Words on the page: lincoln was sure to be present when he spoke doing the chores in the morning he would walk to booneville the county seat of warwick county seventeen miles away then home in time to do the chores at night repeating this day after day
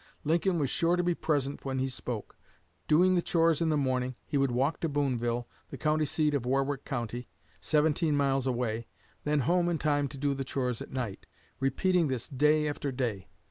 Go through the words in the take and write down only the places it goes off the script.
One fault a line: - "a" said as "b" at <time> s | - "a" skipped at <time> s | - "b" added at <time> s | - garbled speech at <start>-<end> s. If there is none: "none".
none